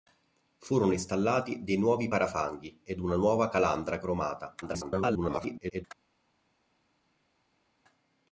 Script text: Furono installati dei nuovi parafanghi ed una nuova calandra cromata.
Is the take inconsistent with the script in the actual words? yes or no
yes